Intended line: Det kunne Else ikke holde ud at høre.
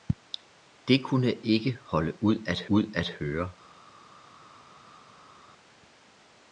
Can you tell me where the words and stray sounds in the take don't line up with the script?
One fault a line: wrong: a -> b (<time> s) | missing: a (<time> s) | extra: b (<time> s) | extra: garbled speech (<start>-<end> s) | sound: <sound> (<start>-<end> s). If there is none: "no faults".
missing: Else (1.4 s)
extra: ud at (2.7 s)